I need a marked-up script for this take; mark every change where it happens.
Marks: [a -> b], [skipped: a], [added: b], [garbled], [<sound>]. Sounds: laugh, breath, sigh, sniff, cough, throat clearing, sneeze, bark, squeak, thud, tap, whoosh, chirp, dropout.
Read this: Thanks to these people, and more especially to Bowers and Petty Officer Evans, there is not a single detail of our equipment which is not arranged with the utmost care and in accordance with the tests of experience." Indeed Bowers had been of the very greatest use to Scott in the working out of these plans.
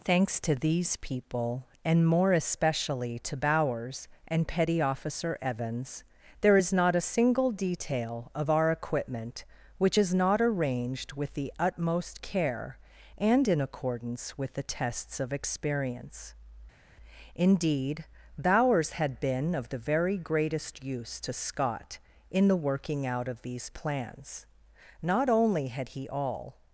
Thanks to these people, and more especially to Bowers and Petty Officer Evans, there is not a single detail of our equipment which is not arranged with the utmost care and in accordance with the tests of experience." Indeed Bowers had been of the very greatest use to Scott in the working out of these plans. [added: Not only had he all]